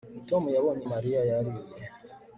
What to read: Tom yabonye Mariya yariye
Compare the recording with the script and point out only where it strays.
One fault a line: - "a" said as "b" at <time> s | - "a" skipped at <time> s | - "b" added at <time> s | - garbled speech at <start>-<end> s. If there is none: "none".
none